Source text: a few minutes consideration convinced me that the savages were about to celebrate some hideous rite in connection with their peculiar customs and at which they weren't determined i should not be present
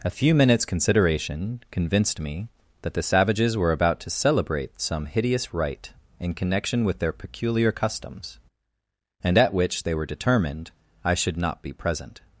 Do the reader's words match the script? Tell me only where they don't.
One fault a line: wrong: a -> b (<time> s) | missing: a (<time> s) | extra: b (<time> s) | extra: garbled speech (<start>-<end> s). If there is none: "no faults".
wrong: weren't -> were (9.9 s)